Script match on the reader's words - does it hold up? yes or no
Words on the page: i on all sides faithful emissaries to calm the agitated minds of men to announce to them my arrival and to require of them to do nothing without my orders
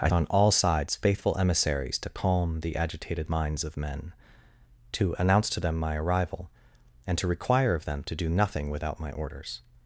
yes